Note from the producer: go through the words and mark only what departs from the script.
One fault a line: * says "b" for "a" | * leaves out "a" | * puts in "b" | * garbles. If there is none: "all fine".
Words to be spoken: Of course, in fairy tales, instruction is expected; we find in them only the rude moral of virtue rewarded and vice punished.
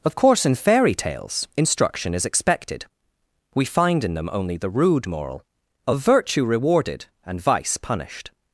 all fine